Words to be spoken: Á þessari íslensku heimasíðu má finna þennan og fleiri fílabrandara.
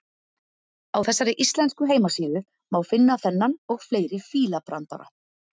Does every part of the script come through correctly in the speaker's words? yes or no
yes